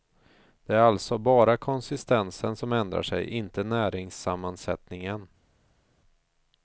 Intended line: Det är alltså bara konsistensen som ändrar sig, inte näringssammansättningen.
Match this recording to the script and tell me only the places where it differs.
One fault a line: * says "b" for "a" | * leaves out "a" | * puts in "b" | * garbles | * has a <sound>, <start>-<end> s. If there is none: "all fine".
all fine